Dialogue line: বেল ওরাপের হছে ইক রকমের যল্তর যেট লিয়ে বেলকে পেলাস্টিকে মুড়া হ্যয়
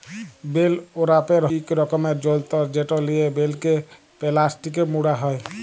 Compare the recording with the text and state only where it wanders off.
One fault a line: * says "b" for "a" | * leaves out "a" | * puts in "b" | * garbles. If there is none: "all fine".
* leaves out "হছে"